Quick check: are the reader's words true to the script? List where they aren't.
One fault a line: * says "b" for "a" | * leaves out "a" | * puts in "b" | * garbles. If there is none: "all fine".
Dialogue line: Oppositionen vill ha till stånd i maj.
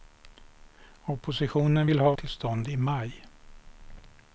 all fine